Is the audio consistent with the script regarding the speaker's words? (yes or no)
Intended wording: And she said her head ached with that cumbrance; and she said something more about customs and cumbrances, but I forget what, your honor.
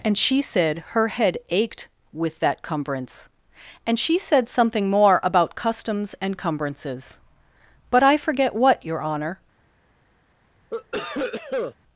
yes